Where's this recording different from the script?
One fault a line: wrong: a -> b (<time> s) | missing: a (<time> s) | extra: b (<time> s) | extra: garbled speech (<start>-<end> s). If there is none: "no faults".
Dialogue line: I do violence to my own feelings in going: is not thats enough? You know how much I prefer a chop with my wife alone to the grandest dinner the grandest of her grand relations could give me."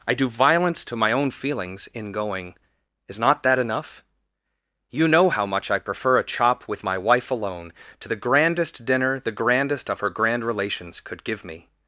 wrong: thats -> that (3.4 s)